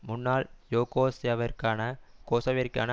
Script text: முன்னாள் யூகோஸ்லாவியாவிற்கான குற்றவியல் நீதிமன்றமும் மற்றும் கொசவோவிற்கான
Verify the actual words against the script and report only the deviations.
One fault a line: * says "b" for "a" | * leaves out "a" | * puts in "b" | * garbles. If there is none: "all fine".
* leaves out "குற்றவியல் நீதிமன்றமும் மற்றும்"